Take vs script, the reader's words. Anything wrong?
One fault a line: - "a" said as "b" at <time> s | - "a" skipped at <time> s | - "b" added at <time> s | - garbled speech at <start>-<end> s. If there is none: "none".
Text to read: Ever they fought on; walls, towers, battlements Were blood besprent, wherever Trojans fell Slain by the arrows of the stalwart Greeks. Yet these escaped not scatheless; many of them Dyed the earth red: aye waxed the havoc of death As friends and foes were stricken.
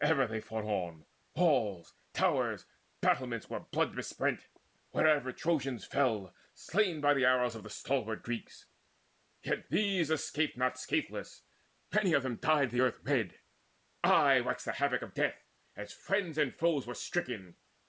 none